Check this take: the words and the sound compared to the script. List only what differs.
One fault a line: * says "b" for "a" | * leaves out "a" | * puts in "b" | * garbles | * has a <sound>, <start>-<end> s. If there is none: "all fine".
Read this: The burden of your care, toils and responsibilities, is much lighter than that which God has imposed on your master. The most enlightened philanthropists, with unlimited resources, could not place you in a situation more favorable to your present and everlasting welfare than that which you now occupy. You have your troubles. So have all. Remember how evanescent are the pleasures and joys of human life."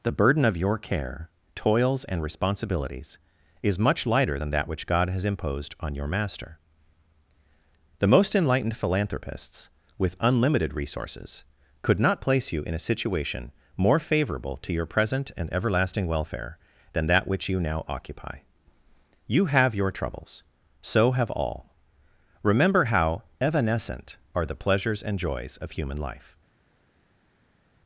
all fine